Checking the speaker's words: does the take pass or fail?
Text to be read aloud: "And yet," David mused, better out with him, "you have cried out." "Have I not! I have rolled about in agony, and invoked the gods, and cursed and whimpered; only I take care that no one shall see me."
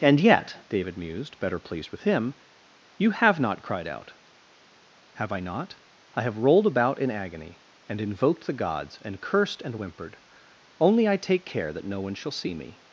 fail